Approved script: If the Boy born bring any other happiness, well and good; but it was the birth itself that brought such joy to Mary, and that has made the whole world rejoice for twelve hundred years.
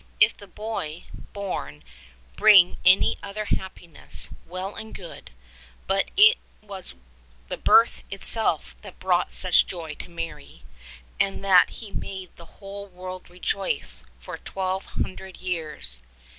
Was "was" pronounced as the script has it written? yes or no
yes